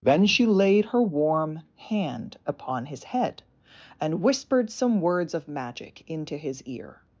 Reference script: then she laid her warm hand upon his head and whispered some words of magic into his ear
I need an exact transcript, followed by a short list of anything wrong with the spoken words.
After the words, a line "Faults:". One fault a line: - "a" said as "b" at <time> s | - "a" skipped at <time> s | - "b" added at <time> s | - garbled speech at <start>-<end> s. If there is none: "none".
then she laid her warm hand upon his head and whispered some words of magic into his ear
Faults:
none